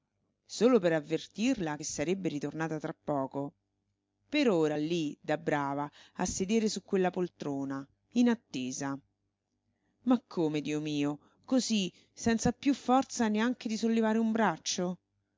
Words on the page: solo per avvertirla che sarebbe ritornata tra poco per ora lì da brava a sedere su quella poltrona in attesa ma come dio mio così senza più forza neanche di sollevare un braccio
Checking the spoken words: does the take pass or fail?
pass